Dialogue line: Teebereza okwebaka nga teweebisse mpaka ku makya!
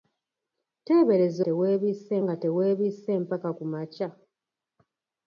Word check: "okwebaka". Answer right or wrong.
wrong